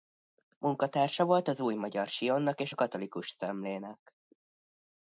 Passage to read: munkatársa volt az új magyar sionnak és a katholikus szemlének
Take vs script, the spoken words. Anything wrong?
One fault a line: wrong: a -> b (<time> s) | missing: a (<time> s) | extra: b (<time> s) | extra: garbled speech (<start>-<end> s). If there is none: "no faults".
no faults